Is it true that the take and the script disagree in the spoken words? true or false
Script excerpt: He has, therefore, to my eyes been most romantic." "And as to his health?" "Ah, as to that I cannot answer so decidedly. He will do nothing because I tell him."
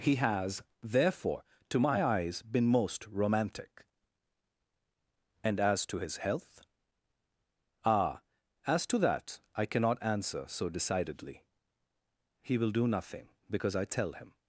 false